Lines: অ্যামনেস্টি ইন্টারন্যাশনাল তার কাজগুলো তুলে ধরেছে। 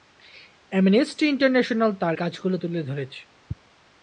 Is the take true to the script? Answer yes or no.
yes